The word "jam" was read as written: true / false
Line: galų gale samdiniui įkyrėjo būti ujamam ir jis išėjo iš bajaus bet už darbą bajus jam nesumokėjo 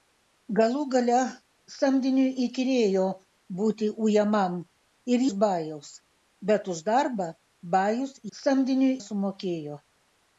false